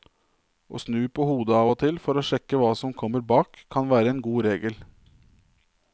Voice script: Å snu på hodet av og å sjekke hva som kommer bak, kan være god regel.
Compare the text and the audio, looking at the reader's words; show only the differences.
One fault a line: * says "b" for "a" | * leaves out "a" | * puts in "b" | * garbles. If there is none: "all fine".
* puts in "til for"
* puts in "en"